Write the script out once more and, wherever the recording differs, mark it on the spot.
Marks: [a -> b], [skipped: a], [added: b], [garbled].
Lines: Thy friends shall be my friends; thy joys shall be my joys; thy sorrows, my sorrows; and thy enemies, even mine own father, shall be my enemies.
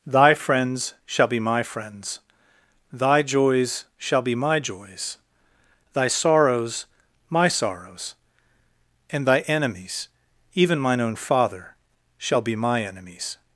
Thy friends shall be my friends; thy joys shall be my joys; thy sorrows, my sorrows; and thy enemies, even mine own father, shall be my enemies.